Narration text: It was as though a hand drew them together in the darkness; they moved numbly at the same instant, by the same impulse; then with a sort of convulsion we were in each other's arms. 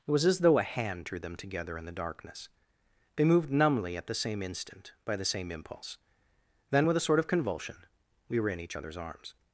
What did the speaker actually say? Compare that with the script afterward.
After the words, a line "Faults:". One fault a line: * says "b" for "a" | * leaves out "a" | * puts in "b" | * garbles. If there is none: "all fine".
It was as though a hand drew them together in the darkness; they moved numbly at the same instant, by the same impulse; then with a sort of convulsion we were in each other's arms.
Faults:
all fine